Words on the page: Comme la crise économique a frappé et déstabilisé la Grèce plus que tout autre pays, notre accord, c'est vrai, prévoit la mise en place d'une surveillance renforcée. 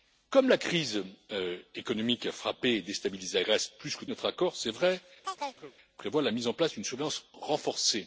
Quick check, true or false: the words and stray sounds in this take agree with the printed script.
false